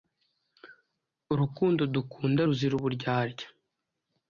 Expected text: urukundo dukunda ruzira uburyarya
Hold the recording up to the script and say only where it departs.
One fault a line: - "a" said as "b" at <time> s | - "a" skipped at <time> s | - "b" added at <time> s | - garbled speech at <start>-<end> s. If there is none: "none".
none